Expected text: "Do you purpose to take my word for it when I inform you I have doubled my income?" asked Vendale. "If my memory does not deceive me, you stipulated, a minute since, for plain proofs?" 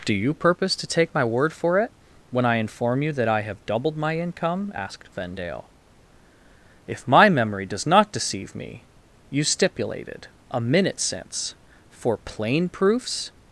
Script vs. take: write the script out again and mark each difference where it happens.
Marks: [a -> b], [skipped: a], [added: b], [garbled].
"Do you purpose to take my word for it when I inform you [added: that] I have doubled my income?" asked Vendale. "If my memory does not deceive me, you stipulated, a minute since, for plain proofs?"